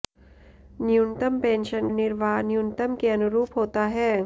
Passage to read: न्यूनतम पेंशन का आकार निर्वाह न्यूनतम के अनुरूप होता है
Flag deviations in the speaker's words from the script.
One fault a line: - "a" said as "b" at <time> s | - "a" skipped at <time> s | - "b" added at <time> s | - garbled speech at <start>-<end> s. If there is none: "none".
- "का आकार" skipped at 1.9 s